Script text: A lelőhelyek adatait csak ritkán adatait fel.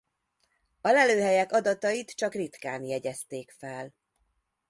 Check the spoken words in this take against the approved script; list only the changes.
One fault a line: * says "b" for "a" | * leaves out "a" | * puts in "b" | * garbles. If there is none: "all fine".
* says "jegyezték" for "adatait"